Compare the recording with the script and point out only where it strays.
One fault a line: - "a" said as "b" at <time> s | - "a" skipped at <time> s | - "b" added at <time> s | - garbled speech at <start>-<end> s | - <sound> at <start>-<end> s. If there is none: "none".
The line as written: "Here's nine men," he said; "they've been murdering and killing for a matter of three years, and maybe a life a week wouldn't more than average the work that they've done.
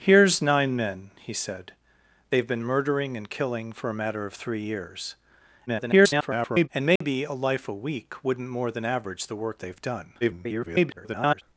- garbled speech at 5.7-6.7 s
- dropout at 7.0-7.0 s
- "that" skipped at 9.6 s
- garbled speech at 10.2-11.4 s